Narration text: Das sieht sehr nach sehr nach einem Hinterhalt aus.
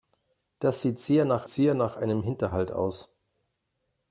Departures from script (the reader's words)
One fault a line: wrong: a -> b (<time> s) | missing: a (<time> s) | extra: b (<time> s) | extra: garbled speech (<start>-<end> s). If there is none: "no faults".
no faults